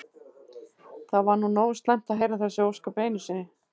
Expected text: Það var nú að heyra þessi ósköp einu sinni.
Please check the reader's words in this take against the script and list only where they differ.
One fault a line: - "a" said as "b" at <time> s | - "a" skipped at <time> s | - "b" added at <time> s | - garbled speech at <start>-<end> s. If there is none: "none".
- "nógu slæmt" added at 1.6 s